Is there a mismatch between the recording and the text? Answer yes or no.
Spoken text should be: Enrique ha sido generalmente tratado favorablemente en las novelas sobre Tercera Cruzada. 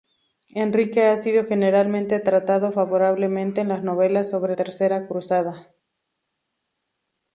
no